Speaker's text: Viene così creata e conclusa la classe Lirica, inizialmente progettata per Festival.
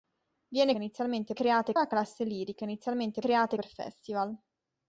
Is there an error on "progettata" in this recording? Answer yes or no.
yes